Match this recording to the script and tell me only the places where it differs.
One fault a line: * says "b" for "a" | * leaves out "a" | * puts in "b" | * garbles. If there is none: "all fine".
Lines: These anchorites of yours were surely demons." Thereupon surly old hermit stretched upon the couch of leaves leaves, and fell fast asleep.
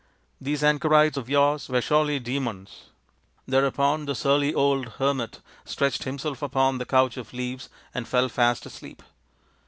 * puts in "the"
* puts in "himself"
* leaves out "leaves"